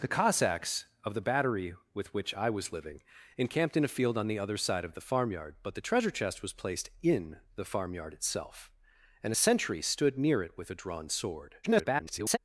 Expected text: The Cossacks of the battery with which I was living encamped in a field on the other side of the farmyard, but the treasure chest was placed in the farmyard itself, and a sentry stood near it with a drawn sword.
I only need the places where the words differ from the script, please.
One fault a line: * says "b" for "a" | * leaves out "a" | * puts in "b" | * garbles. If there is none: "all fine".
* garbles